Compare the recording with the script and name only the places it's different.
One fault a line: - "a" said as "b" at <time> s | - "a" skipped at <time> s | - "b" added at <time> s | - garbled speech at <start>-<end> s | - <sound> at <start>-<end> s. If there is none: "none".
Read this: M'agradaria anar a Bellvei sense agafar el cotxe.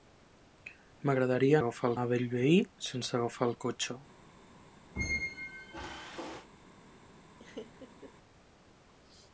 - "anar" said as "agafar" at 1.6 s
- squeak at 5.0-6.5 s
- laugh at 7.4-8.1 s